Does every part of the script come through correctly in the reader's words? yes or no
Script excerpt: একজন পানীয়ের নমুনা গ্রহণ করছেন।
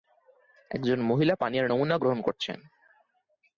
no